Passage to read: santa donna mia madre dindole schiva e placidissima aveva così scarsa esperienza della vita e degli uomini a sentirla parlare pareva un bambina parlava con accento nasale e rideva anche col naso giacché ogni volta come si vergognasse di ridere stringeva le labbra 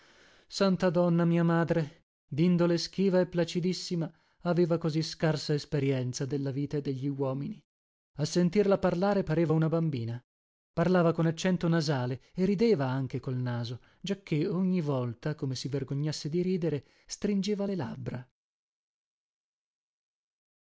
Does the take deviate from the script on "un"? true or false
true